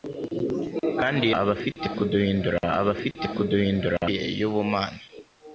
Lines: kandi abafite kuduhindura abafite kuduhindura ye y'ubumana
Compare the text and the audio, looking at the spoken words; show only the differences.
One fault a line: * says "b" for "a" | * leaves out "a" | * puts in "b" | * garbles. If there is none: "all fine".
all fine